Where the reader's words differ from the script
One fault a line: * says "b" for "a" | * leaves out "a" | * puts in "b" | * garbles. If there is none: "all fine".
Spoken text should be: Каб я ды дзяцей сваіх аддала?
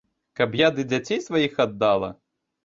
all fine